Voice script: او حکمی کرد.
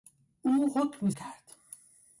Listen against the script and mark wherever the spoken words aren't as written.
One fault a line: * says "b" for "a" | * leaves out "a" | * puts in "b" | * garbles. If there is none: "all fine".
all fine